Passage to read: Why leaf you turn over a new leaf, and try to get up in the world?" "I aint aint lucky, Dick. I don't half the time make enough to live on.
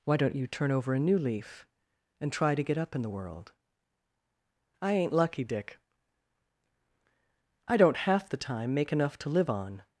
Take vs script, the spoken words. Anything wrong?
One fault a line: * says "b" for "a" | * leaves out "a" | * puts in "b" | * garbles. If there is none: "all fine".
* says "don't" for "leaf"
* leaves out "aint"